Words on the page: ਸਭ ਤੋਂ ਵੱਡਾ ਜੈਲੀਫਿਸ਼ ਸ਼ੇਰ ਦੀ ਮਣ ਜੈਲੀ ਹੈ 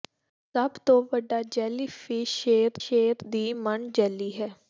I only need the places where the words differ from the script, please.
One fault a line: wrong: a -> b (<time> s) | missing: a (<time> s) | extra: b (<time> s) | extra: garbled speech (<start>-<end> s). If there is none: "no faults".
extra: ਸ਼ੇਰ (2.8 s)